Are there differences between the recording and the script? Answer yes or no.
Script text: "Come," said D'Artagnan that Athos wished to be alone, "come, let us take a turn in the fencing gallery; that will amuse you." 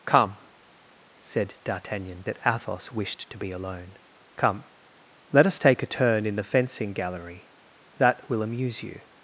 no